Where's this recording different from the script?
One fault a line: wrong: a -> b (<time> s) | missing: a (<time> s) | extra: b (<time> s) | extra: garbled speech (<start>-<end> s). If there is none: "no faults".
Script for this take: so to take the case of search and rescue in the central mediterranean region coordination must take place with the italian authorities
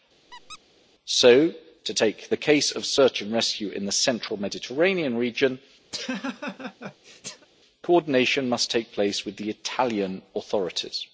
no faults